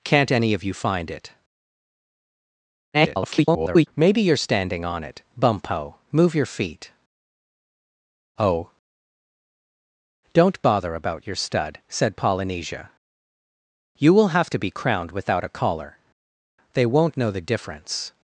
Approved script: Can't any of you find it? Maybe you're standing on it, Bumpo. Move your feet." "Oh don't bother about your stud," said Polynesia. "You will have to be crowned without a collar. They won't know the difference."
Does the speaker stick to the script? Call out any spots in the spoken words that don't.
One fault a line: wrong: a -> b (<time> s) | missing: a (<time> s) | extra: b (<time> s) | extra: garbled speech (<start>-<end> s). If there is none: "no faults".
extra: garbled speech (2.9-3.9 s)